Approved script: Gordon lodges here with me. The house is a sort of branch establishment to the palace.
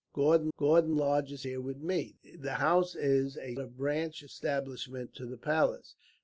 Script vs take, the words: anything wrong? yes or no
yes